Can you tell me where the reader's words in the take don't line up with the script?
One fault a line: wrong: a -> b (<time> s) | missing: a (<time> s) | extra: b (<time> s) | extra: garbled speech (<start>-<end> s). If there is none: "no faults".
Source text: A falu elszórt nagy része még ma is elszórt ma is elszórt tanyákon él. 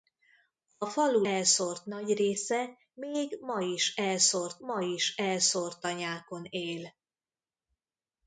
no faults